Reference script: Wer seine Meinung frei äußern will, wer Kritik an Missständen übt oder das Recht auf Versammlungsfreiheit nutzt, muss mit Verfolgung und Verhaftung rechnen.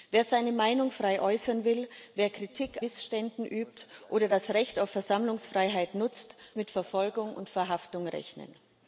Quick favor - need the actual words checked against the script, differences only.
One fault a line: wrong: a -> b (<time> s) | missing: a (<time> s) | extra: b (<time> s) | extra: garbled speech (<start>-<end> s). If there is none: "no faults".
missing: an (2.8 s)
missing: muss (6.3 s)